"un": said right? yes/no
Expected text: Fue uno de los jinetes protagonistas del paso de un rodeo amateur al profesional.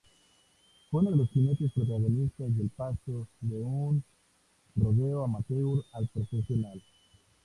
yes